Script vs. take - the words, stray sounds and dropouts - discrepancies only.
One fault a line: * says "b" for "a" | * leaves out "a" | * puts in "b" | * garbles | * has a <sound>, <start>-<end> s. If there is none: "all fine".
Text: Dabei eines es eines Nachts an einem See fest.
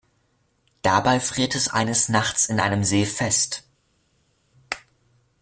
* says "friert" for "eines"
* says "in" for "an"